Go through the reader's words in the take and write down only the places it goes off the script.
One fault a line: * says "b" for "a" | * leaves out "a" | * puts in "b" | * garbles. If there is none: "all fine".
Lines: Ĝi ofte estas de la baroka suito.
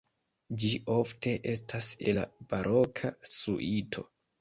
all fine